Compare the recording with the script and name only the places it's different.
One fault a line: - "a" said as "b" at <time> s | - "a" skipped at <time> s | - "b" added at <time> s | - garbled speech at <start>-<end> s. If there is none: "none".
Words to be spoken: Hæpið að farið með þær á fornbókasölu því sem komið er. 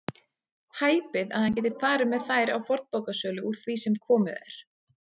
- "hann geti" added at 1.5 s
- "úr" added at 3.5 s